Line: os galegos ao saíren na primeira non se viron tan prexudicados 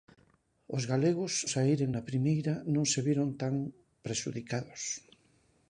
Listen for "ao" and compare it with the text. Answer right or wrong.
wrong